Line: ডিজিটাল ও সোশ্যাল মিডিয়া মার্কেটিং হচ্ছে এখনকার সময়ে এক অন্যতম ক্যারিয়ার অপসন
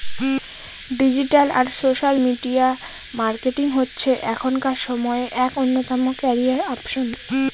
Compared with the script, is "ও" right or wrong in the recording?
wrong